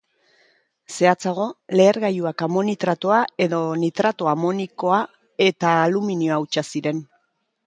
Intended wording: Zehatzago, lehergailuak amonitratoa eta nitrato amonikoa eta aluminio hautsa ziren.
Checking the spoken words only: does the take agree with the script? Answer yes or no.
no